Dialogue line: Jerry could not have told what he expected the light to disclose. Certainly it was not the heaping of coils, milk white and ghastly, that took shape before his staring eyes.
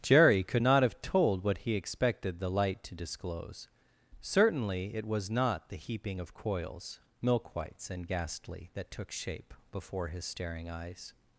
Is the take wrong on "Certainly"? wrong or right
right